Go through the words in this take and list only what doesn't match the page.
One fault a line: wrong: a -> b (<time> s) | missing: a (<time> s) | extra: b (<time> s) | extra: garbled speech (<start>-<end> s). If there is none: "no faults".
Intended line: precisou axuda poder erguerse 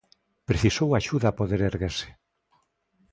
no faults